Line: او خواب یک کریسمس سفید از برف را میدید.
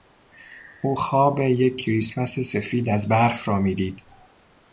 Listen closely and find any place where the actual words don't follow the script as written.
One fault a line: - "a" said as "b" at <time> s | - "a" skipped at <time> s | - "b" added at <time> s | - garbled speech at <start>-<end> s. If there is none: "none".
none